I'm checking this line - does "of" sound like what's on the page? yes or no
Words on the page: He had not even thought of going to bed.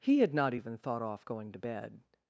no